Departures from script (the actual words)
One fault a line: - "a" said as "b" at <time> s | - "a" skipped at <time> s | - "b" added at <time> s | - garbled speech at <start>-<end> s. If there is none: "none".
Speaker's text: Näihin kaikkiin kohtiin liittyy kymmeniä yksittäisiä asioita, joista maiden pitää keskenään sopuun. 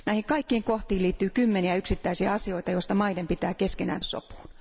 none